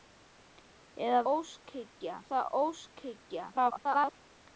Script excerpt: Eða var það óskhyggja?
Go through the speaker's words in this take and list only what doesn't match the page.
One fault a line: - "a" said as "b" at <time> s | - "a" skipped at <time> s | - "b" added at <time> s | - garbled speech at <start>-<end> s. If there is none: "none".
- "var" said as "óskhyggja" at 1.3 s
- garbled speech at 3.5-4.1 s